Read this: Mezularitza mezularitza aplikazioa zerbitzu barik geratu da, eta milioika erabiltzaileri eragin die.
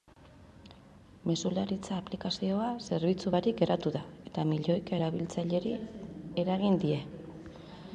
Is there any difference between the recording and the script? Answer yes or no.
yes